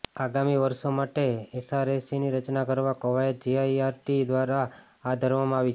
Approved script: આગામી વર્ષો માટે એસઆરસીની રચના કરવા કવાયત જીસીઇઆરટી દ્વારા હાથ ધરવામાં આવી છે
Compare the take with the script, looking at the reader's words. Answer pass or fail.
pass